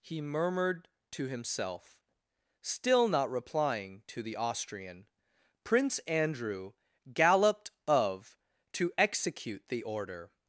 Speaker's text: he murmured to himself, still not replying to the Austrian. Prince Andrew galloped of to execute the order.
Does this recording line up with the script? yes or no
yes